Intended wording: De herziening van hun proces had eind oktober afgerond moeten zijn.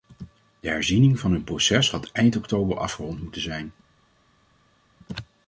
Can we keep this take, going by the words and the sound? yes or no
yes